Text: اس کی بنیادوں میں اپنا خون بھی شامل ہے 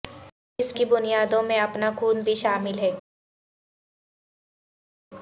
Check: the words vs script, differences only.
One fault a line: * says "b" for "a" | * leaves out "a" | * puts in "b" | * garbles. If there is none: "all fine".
all fine